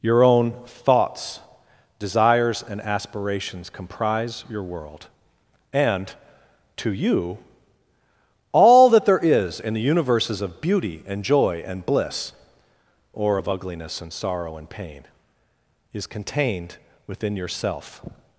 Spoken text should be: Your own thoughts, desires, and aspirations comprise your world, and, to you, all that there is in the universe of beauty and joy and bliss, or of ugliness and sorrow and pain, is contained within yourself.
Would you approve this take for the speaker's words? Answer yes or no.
no